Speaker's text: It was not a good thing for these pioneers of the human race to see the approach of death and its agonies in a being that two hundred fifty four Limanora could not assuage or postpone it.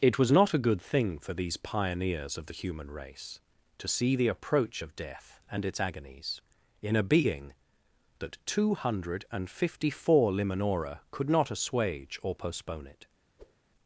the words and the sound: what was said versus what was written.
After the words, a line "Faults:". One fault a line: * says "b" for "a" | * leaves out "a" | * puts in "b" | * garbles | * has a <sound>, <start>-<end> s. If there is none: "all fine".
It was not a good thing for these pioneers of the human race to see the approach of death and its agonies in a being that two hundred fifty four Limanora could not assuage or postpone it.
Faults:
* has a whoosh, 13.4-13.6 s